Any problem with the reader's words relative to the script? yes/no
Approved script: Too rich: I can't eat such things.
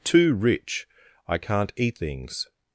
yes